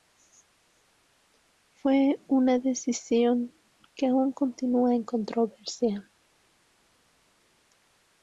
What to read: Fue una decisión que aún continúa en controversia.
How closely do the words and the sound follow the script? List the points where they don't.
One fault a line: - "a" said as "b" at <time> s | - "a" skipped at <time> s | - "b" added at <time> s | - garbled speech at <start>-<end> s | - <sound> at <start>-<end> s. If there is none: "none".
none